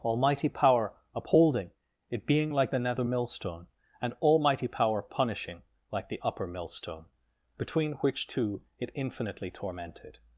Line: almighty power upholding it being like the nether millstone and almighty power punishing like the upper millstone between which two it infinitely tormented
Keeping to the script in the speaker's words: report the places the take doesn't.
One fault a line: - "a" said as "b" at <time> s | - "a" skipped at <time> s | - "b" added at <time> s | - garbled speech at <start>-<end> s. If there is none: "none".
none